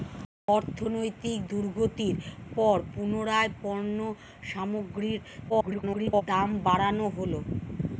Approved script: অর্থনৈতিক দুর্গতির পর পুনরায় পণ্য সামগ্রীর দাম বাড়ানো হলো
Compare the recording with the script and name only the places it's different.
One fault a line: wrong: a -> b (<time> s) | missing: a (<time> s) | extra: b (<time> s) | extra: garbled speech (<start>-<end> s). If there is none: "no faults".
extra: garbled speech (5.5-6.2 s)